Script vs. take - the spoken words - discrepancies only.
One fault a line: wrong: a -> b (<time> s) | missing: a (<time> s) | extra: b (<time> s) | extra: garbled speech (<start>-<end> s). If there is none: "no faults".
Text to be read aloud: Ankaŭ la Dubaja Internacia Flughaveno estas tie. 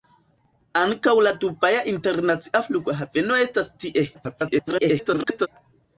extra: garbled speech (4.1-5.5 s)